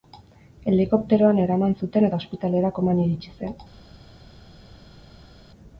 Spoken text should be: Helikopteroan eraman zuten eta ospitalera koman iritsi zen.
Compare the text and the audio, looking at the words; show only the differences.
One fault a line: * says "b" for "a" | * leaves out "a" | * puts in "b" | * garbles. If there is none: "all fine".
all fine